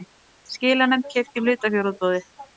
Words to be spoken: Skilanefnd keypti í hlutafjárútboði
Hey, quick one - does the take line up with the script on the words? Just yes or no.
yes